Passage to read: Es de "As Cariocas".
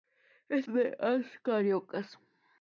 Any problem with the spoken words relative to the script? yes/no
no